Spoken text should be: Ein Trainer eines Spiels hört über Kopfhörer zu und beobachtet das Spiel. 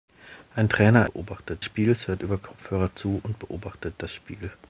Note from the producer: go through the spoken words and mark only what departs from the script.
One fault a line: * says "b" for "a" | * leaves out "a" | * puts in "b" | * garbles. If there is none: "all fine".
* says "beobachtet" for "eines"